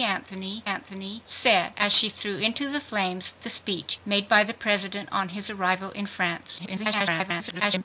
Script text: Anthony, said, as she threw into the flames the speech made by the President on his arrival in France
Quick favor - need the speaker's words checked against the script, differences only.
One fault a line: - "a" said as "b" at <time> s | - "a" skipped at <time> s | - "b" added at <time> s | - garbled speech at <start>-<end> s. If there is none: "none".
- "anthony" added at 0.6 s
- garbled speech at 6.6-7.8 s